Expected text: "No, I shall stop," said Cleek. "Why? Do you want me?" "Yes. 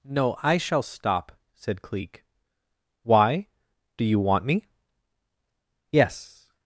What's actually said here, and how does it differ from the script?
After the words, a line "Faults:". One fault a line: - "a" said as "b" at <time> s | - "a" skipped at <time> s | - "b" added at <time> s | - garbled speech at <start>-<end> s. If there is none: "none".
"No, I shall stop," said Cleek. "Why? Do you want me?" "Yes.
Faults:
none